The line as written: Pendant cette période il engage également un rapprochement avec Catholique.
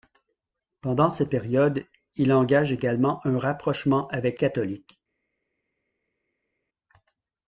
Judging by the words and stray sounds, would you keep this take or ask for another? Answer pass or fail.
pass